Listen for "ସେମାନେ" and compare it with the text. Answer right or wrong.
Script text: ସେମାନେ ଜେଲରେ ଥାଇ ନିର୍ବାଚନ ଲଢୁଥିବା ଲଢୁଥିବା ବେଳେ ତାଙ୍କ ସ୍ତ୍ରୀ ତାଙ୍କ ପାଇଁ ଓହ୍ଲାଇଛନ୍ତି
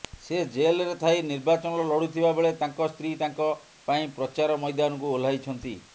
wrong